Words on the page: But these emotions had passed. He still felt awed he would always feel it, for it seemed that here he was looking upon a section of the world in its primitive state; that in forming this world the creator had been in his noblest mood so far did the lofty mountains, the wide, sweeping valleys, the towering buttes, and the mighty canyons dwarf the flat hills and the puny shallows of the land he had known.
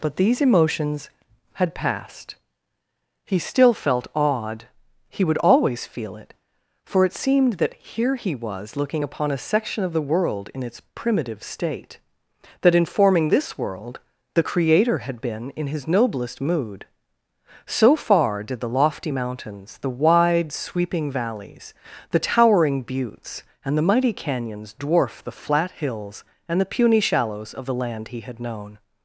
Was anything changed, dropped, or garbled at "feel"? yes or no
no